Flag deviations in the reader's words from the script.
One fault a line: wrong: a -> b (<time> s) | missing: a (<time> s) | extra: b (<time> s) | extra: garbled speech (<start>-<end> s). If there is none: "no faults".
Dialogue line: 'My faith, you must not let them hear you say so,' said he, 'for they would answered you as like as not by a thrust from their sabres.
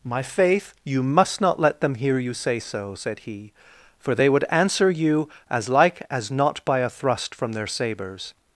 wrong: answered -> answer (4.5 s)